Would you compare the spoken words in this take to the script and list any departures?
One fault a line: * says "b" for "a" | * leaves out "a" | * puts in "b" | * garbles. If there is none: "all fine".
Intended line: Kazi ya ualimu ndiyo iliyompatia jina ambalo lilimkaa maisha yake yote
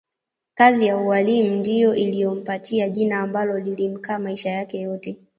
all fine